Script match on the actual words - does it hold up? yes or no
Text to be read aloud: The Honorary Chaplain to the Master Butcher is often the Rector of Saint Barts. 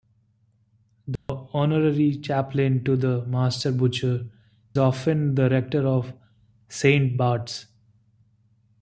no